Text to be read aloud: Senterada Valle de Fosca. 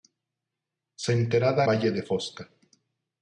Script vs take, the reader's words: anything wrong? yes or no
no